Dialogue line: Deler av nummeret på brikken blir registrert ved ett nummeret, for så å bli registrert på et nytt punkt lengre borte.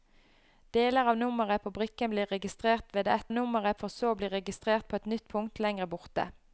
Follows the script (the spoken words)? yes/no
yes